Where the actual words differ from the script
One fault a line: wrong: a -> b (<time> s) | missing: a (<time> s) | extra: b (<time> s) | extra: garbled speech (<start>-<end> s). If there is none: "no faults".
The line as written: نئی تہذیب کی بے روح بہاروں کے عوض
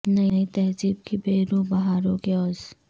no faults